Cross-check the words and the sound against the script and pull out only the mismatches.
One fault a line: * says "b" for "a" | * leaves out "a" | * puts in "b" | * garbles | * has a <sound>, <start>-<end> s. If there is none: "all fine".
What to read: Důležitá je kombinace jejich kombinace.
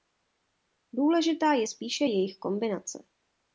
* says "spíše" for "kombinace"